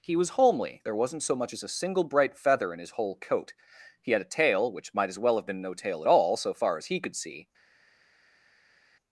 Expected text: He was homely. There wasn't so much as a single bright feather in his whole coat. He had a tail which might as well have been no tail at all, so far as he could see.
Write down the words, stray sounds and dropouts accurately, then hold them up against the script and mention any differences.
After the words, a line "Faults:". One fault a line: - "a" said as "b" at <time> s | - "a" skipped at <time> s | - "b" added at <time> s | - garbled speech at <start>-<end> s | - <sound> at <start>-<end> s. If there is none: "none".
He was homely. There wasn't so much as a single bright feather in his whole coat. He had a tail which might as well have been no tail at all, so far as he could see.
Faults:
none